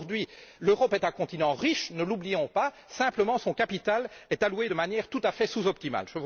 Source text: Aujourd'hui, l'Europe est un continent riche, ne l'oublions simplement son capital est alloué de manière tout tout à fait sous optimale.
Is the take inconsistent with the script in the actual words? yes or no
yes